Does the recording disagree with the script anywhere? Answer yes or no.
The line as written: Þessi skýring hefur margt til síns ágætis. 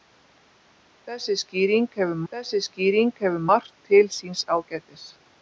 yes